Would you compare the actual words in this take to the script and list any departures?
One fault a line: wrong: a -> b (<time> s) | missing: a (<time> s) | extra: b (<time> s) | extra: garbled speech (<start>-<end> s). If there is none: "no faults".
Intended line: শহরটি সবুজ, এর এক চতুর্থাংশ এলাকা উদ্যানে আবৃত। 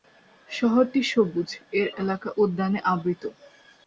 missing: এক চতুর্থাংশ (1.9 s)